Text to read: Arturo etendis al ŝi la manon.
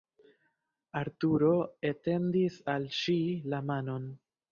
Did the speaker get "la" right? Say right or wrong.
right